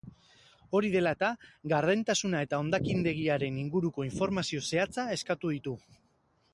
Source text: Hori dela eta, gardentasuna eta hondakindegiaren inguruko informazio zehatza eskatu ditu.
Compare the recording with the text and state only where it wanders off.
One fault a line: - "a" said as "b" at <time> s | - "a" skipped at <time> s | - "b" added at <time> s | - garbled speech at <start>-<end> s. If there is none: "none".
none